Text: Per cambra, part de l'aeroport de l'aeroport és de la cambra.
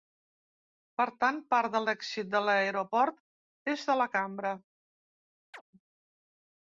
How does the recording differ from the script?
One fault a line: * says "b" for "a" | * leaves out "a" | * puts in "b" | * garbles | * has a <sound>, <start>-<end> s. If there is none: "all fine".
* says "tant" for "cambra"
* says "l'èxit" for "l'aeroport"
* has a chirp, 5.5-5.6 s